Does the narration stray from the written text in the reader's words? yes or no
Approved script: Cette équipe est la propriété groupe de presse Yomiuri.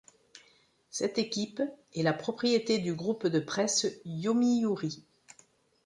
yes